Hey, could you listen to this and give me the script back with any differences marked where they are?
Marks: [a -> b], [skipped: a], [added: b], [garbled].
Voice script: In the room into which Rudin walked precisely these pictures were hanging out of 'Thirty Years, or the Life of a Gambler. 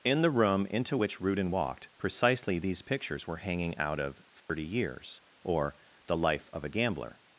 In the room into which Rudin walked precisely these pictures were hanging out of 'Thirty Years, or the Life of a Gambler.